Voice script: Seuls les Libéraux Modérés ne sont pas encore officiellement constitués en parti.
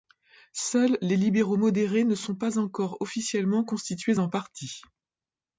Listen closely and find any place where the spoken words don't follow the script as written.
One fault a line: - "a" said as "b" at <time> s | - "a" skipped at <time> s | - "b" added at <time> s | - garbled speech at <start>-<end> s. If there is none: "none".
none